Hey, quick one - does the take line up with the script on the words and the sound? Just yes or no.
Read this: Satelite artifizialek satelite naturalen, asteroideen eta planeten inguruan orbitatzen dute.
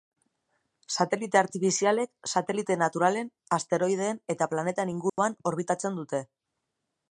no